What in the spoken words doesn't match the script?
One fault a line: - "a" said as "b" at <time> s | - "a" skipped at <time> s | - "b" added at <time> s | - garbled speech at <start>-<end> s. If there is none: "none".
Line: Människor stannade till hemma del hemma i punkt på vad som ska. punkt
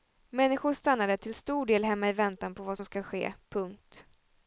- "hemma" said as "stor" at 1.4 s
- "punkt" said as "väntan" at 2.1 s
- "ske" added at 3.0 s